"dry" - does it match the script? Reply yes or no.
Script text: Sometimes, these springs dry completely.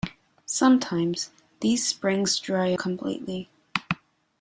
yes